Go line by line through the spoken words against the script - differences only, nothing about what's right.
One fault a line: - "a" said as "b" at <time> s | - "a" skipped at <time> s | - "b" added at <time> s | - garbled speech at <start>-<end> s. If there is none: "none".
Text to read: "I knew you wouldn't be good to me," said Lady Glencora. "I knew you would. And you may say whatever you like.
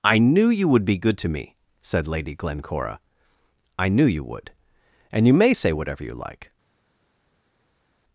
- "wouldn't" said as "would" at 0.7 s